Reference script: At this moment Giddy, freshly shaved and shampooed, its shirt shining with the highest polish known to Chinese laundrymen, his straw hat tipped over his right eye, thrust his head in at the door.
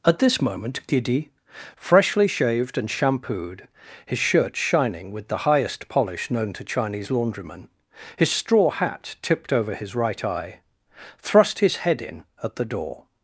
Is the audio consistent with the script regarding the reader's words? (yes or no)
no